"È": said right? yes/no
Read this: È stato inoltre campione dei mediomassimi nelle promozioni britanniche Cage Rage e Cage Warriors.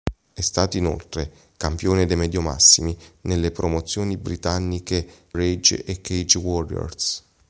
yes